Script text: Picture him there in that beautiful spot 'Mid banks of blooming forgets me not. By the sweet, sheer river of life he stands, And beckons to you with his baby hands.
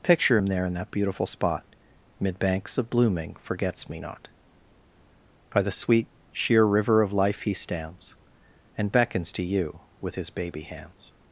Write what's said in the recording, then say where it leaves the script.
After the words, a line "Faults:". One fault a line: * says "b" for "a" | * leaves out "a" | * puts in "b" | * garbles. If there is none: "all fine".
Picture him there in that beautiful spot 'Mid banks of blooming forgets me not. By the sweet, sheer river of life he stands, And beckons to you with his baby hands.
Faults:
all fine